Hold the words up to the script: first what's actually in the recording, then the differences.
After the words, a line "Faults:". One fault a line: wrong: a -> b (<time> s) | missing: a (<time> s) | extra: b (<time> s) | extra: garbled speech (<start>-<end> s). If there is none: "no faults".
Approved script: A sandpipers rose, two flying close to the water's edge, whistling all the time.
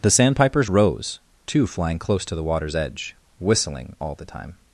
The sandpipers rose, two flying close to the water's edge, whistling all the time.
Faults:
wrong: A -> The (0.0 s)